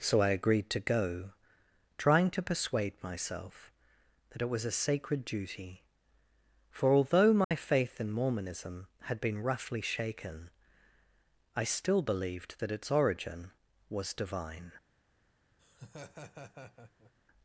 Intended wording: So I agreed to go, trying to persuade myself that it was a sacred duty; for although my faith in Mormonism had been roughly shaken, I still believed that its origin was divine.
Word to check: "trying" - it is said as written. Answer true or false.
true